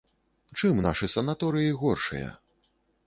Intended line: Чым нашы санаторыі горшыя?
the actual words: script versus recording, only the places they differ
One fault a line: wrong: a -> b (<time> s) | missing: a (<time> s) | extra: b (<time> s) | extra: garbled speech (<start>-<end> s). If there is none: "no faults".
no faults